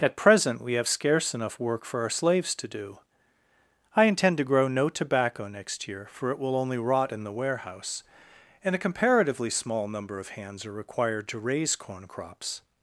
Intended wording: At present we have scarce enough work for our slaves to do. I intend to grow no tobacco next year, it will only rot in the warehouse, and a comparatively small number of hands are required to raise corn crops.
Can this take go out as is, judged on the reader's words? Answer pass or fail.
fail